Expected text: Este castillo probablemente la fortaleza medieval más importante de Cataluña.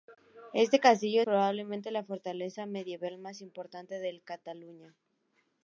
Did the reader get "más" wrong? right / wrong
right